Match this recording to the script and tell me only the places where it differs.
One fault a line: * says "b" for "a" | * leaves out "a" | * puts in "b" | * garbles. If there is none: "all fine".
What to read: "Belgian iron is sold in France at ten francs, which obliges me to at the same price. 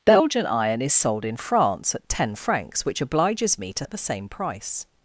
all fine